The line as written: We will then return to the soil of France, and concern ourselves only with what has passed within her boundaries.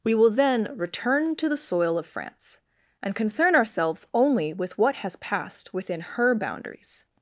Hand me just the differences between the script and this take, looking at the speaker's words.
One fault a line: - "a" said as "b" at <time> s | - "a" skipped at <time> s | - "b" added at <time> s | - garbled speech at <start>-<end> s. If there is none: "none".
none